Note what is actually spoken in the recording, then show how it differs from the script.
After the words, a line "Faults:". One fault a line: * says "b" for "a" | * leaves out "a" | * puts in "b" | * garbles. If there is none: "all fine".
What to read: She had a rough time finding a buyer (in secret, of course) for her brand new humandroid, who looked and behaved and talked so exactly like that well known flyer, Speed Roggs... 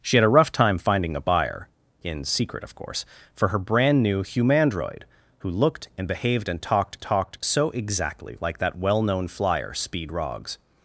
She had a rough time finding a buyer (in secret, of course) for her brand new humandroid, who looked and behaved and talked talked so exactly like that well known flyer, Speed Roggs...
Faults:
* puts in "talked"